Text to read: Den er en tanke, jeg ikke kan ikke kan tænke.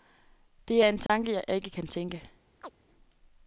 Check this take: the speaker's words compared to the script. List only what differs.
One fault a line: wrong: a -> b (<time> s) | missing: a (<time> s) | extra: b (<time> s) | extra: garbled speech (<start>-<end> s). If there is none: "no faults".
wrong: Den -> Det (0.7 s)
missing: ikke kan (1.9 s)